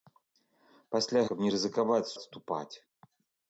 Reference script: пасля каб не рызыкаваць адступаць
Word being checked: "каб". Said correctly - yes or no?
yes